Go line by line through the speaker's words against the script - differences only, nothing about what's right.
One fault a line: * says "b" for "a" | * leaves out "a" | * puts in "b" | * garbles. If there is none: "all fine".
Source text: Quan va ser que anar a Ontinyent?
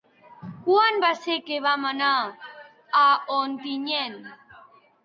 * puts in "vam"